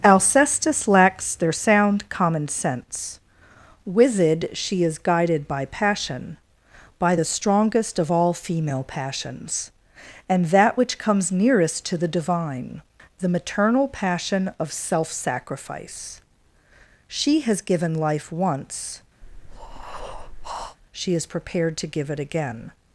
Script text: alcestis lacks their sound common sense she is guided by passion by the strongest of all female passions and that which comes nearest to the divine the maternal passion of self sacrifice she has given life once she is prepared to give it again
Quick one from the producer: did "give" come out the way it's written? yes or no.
yes